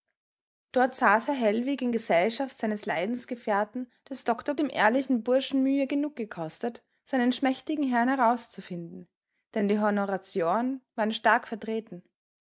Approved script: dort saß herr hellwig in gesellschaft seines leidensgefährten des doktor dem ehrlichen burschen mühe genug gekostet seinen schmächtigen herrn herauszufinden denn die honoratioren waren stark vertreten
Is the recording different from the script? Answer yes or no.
no